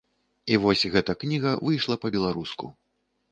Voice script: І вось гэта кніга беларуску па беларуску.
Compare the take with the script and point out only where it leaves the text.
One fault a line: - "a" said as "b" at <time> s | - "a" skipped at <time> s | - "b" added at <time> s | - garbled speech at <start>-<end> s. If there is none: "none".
- "беларуску" said as "выйшла" at 1.7 s